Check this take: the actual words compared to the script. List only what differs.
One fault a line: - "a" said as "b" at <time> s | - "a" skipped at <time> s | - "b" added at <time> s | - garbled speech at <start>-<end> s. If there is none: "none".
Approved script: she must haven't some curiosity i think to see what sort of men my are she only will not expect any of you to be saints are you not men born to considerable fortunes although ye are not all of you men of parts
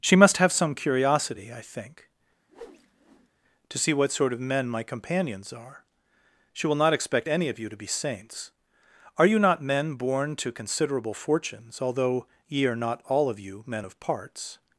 - "haven't" said as "have" at 0.4 s
- "companions" added at 4.8 s
- "only" skipped at 6.7 s